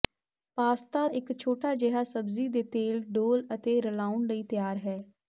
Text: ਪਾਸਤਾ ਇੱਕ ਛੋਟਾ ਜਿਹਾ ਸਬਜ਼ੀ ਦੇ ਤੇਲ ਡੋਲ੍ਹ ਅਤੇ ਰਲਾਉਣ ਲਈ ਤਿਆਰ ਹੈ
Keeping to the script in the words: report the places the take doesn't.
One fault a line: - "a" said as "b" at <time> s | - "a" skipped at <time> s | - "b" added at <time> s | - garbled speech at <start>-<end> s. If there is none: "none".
none